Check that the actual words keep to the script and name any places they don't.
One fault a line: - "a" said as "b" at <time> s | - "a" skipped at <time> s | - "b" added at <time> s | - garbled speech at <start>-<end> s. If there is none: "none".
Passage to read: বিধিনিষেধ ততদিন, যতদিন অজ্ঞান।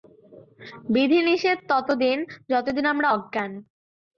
- "আমরা" added at 2.8 s